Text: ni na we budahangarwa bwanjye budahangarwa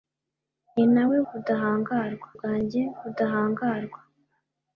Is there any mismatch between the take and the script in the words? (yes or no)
no